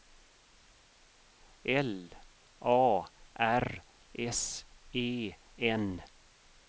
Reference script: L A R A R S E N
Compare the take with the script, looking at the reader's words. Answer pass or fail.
fail